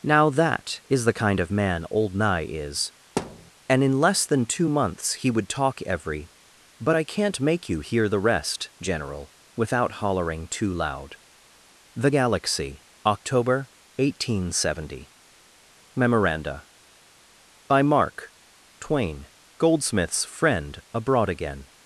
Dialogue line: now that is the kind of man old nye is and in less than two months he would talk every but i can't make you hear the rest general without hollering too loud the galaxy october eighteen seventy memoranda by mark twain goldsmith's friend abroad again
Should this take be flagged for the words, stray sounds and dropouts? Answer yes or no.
yes